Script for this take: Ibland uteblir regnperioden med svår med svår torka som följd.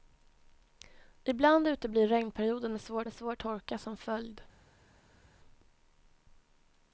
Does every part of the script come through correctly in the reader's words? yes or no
yes